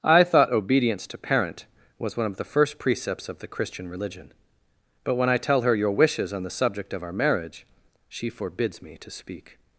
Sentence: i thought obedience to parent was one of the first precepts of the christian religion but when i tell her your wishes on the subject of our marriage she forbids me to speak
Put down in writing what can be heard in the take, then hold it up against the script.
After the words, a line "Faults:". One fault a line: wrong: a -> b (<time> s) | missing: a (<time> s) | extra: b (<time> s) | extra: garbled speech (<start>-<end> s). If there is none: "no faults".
i thought obedience to parent was one of the first precepts of the christian religion but when i tell her your wishes on the subject of our marriage she forbids me to speak
Faults:
no faults